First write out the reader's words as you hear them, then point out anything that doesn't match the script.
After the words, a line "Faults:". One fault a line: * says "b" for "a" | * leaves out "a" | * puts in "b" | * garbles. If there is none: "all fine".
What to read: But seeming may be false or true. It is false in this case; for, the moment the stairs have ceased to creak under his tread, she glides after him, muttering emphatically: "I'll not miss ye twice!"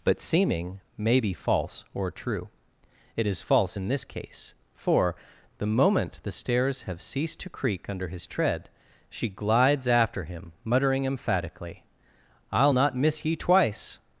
But seeming may be false or true. It is false in this case; for, the moment the stairs have ceased to creak under his tread, she glides after him, muttering emphatically: "I'll not miss ye twice!"
Faults:
all fine